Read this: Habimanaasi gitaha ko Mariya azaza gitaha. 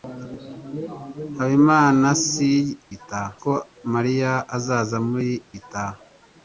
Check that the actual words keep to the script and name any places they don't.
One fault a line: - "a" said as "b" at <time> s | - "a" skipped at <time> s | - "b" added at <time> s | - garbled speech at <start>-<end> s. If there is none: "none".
none